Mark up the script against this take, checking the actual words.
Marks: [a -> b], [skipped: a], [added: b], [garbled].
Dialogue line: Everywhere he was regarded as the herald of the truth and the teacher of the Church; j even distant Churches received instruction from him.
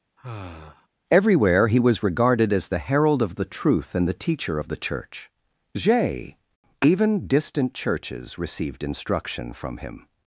Everywhere he was regarded as the herald of the truth and the teacher of the Church; j even distant Churches received instruction from him.